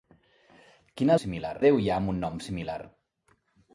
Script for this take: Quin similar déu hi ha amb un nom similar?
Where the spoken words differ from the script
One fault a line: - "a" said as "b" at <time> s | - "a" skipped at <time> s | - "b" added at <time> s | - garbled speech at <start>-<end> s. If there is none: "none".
none